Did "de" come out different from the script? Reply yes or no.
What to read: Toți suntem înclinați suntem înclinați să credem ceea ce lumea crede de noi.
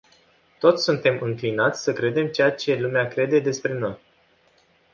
yes